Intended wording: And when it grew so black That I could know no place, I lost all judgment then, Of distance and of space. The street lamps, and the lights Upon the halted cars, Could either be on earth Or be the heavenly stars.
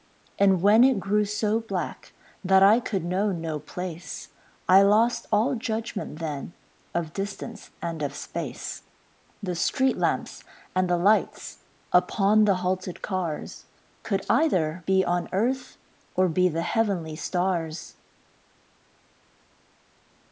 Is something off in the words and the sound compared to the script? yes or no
no